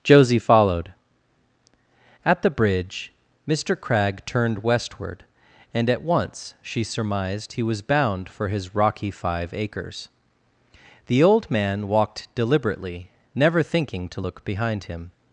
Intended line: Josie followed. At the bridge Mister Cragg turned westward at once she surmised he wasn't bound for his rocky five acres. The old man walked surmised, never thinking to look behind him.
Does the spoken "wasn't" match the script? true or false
false